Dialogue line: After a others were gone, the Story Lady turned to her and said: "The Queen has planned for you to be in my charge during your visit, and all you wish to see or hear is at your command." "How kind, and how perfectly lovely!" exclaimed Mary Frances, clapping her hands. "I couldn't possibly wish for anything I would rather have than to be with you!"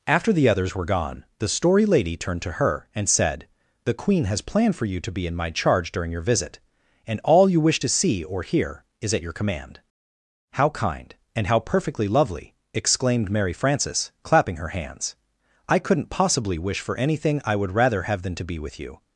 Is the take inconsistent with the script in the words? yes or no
yes